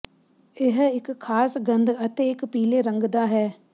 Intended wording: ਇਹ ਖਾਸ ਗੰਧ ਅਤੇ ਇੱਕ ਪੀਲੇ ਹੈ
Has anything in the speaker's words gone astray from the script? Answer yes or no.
yes